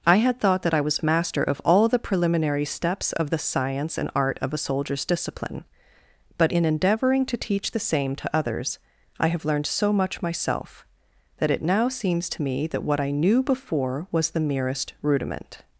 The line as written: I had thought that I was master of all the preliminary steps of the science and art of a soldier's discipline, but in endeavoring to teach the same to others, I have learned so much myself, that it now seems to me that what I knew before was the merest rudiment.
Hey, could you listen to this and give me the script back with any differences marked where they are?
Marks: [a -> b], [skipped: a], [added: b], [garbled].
I had thought that I was master of all the preliminary steps of the science and art of a soldier's discipline, but in endeavoring to teach the same to others, I have learned so much myself, that it now seems to me that what I knew before was the merest rudiment.